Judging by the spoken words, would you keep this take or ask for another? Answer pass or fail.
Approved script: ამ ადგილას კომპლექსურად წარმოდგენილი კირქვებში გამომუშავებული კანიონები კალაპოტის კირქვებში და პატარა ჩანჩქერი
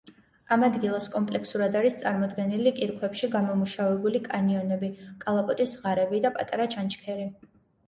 fail